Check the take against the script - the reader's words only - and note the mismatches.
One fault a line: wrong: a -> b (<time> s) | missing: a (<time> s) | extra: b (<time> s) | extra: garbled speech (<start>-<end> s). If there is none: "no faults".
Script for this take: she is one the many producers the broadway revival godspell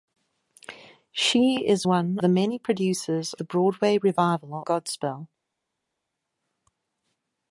no faults